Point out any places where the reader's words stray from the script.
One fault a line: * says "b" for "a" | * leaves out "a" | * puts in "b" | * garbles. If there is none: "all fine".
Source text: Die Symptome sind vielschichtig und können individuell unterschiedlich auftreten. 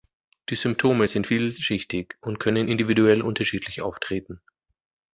all fine